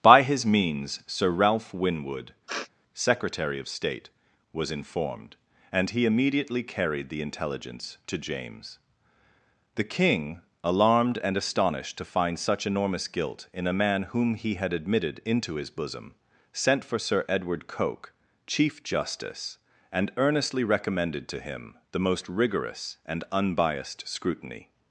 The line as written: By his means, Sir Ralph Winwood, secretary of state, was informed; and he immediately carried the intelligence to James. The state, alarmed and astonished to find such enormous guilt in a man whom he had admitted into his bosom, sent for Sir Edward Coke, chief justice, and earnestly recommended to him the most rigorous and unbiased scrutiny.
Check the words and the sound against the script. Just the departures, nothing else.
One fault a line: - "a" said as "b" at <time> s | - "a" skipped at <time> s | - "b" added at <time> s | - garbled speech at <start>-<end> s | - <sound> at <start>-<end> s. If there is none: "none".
- sniff at 2.5-2.7 s
- "state" said as "king" at 9.8 s